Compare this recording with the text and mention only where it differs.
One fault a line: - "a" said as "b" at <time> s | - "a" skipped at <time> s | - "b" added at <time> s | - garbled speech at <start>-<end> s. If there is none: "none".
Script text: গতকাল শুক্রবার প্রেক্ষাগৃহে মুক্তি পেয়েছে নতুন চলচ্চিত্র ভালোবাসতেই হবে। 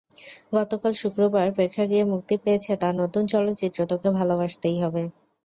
- "তাঁর" added at 2.8 s
- "তোকে" added at 3.9 s